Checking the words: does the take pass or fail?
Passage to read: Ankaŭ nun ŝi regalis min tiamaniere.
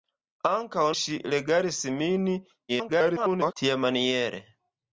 fail